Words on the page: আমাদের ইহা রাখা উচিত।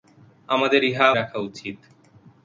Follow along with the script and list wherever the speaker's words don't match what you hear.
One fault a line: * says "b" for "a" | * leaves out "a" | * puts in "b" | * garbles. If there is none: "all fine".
all fine